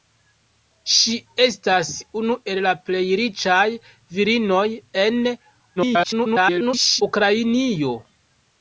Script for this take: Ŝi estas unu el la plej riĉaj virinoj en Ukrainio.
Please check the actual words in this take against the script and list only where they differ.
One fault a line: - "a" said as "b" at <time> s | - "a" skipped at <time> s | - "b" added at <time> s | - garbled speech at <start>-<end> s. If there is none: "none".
- garbled speech at 5.8-7.0 s